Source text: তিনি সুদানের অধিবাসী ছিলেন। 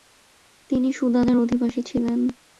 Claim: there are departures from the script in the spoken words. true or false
false